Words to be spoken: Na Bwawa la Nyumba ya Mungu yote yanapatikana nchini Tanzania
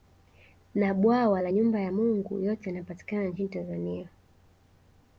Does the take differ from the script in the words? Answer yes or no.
no